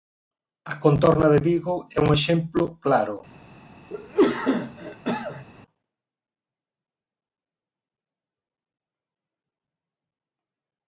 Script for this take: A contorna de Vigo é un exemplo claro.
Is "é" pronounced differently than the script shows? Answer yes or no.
no